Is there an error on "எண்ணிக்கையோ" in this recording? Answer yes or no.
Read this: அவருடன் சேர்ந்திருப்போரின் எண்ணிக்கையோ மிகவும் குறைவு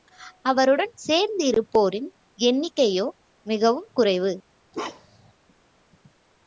no